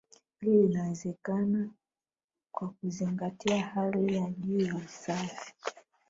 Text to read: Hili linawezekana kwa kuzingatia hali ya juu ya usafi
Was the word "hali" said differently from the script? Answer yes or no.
no